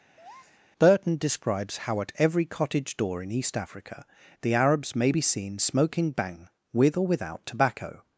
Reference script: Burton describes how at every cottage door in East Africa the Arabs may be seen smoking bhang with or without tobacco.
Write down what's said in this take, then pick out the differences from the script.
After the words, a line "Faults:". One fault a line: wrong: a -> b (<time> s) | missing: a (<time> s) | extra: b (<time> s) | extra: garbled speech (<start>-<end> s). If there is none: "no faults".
Burton describes how at every cottage door in East Africa the Arabs may be seen smoking bhang with or without tobacco.
Faults:
no faults